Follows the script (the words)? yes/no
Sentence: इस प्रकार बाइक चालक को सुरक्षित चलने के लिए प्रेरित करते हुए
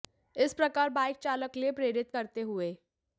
no